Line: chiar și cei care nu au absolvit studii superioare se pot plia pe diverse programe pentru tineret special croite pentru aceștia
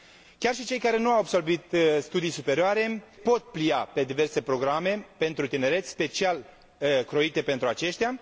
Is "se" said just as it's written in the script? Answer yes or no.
no